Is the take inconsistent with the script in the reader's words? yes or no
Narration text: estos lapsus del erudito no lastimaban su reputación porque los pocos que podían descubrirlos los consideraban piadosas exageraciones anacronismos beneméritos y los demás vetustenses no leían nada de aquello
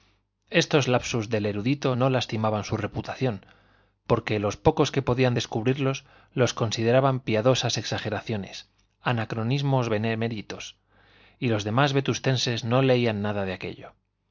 no